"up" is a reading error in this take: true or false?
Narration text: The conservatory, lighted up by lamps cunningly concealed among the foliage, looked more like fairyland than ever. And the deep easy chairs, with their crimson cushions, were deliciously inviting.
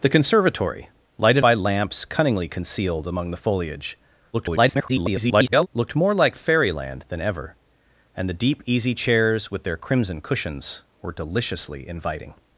true